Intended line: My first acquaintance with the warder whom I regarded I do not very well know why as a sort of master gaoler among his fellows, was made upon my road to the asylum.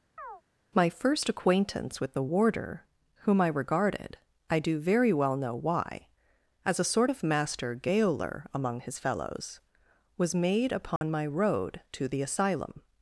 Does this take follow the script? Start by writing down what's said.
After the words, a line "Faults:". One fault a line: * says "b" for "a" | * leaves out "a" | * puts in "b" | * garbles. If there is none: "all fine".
My first acquaintance with the warder whom I regarded I do very well know why as a sort of master gaoler among his fellows, was made upon my road to the asylum.
Faults:
* leaves out "not"